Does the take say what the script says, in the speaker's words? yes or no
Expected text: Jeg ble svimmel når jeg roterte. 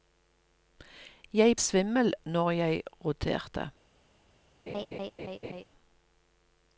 no